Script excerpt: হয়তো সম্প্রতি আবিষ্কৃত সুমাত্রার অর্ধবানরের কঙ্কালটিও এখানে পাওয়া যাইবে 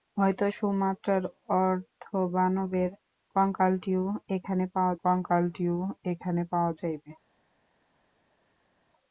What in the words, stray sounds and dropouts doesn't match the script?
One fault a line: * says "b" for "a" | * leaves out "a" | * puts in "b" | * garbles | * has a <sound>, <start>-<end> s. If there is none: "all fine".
* says "সুমাত্রার অর্ধবানরের কঙ্কালটিও এখানে পাওয়া" for "সম্প্রতি আবিষ্কৃত সুমাত্রার অর্ধবানরের"